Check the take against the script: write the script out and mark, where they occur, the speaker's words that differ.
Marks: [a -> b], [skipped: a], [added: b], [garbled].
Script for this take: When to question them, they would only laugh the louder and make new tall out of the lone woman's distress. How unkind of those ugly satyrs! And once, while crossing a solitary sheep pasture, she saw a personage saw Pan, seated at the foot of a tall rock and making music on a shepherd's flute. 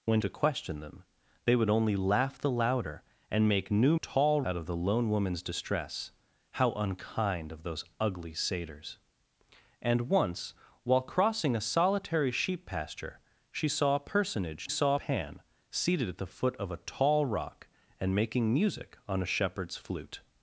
When to question them, they would only laugh the louder and make new tall out of the lone woman's distress. How unkind of those ugly satyrs! And once, while crossing a solitary sheep pasture, she saw a personage saw Pan, seated at the foot of a tall rock and making music on a shepherd's flute.